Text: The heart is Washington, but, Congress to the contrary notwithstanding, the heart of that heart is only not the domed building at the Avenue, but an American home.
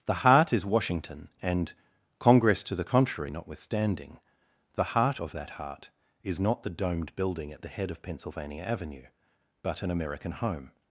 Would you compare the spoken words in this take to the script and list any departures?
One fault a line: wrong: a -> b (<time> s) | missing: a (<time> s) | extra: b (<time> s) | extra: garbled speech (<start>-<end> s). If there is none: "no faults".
wrong: but -> and (1.4 s)
missing: only (6.4 s)
extra: head of Pennsylvania (7.7 s)